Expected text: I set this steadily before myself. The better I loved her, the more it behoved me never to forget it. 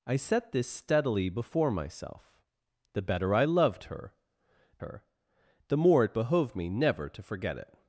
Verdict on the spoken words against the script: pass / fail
fail